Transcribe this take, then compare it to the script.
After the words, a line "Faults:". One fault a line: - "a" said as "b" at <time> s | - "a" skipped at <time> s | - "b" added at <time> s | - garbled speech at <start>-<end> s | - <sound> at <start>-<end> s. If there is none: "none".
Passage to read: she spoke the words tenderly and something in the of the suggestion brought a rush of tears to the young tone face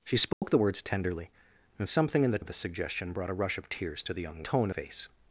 she spoke the words tenderly and something in the of the suggestion brought a rush of tears to the young tone face
Faults:
- dropout at 0.3-0.4 s